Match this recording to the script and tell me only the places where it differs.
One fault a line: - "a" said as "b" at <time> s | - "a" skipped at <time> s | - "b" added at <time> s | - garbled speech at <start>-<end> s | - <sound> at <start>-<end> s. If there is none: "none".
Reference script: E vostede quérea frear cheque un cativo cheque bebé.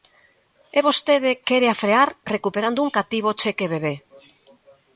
- "cheque" said as "recuperando" at 2.3 s